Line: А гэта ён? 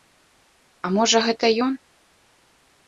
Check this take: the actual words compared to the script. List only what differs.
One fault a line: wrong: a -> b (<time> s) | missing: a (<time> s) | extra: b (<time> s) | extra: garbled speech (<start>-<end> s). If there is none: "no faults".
extra: можа (1.0 s)